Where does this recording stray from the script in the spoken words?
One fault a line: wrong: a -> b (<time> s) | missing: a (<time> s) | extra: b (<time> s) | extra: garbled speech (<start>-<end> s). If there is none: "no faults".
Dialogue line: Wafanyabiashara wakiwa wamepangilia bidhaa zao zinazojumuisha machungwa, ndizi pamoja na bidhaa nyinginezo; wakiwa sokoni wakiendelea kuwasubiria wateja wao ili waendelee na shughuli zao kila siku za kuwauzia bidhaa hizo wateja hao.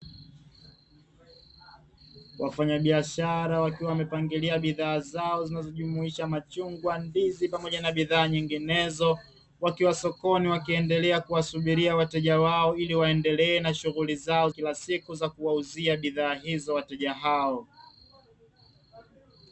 no faults